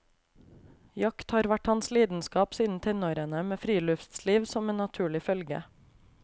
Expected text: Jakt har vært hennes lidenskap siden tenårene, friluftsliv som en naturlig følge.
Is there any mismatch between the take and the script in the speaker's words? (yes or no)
yes